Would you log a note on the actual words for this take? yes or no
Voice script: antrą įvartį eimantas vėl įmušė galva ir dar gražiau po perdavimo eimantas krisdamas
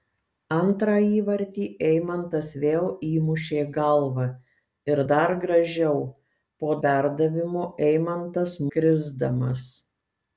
no